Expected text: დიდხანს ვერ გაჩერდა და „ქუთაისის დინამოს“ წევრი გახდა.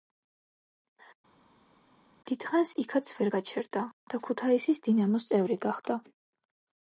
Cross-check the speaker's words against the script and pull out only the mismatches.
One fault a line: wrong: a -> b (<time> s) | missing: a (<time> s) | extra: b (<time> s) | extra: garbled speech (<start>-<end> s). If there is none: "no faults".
extra: იქაც (2.8 s)